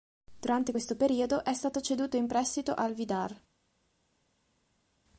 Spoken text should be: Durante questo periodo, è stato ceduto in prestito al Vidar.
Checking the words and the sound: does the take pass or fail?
pass